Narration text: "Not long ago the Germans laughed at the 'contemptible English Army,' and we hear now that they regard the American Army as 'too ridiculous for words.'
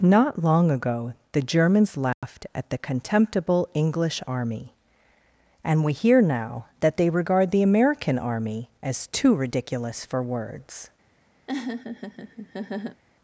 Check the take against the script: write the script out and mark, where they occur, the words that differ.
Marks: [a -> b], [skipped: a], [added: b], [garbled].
"Not long ago the Germans laughed at the 'contemptible English Army,' and we hear now that they regard the American Army as 'too ridiculous for words.'